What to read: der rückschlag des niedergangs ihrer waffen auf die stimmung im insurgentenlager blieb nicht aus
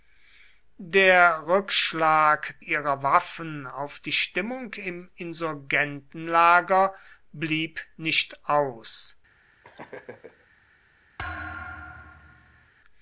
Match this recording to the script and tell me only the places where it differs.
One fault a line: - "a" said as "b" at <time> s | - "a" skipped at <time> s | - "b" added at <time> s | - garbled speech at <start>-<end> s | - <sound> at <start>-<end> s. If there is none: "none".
- "des niedergangs" skipped at 2.6 s
- laugh at 9.6-10.5 s
- thud at 11.2-12.7 s